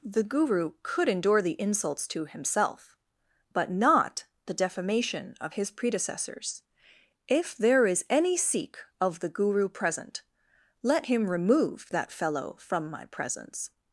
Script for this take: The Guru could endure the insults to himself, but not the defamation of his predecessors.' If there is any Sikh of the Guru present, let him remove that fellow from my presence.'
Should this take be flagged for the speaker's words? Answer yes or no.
no